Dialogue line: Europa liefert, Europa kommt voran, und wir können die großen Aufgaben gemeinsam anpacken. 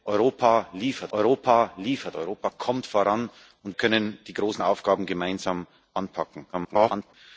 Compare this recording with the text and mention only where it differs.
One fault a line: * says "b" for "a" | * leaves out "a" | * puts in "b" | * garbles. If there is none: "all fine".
* puts in "liefert Europa"
* leaves out "wir"
* garbles